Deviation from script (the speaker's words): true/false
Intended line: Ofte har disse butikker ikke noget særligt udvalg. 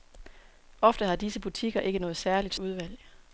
false